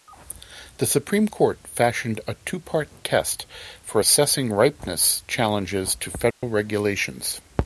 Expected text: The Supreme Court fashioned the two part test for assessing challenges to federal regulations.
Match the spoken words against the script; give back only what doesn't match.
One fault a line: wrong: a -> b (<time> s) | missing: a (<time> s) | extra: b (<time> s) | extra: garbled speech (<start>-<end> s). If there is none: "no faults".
wrong: the -> a (2.3 s)
extra: ripeness (4.5 s)